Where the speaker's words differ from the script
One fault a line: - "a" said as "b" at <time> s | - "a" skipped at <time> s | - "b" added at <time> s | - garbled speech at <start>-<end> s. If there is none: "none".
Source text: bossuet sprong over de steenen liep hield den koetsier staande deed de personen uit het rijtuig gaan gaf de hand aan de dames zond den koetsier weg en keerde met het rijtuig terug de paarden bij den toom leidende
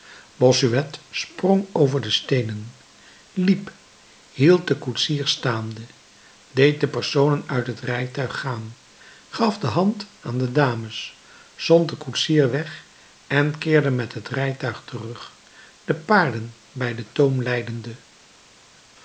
none